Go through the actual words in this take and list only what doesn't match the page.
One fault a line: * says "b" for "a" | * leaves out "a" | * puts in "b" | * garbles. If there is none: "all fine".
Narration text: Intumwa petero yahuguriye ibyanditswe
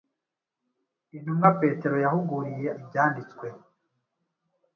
all fine